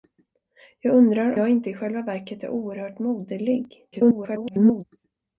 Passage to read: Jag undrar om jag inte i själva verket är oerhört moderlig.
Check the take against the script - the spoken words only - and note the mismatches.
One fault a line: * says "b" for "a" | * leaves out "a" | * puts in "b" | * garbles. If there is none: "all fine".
* leaves out "om"
* garbles